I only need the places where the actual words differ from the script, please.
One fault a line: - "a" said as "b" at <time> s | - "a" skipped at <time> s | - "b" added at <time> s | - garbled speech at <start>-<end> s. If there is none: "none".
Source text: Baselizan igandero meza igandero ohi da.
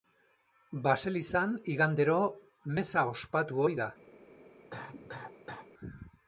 - "igandero" said as "ospatu" at 3.1 s